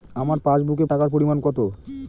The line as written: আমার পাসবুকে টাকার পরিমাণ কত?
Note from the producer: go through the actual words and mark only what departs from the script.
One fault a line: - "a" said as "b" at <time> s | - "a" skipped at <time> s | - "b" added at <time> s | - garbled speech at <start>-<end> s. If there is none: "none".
none